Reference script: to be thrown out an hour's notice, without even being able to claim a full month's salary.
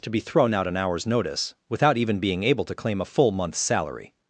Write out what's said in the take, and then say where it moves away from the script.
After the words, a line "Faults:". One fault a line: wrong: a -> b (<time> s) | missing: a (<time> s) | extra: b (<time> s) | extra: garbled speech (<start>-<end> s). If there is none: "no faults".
to be thrown out an hour's notice, without even being able to claim a full month's salary.
Faults:
no faults